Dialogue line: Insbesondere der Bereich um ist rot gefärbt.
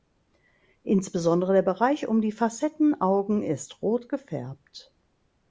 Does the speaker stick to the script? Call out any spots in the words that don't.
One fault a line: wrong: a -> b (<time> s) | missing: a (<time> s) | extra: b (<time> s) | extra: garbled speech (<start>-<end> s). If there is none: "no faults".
extra: die Facettenaugen (2.2 s)